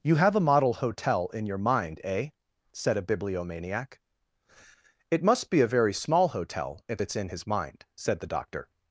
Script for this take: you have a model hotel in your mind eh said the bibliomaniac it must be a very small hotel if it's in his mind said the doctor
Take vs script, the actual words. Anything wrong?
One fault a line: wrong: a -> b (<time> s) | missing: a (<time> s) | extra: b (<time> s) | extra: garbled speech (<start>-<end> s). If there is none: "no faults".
wrong: the -> a (3.0 s)